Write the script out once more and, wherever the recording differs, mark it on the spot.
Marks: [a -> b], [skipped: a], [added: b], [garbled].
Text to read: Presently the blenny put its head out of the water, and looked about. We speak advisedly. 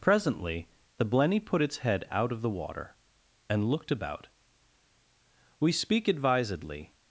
Presently the blenny put its head out of the water, and looked about. We speak advisedly.